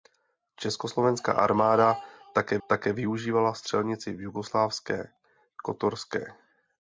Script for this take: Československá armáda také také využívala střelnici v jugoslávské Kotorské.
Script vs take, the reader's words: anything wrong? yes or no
no